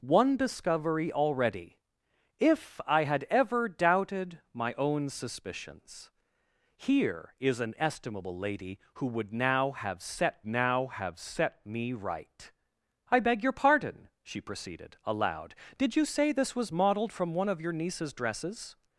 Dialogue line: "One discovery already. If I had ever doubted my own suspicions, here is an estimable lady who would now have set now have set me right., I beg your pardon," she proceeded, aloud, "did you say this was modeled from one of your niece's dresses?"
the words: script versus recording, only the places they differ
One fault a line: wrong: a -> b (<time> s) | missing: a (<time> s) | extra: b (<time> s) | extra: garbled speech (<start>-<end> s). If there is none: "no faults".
no faults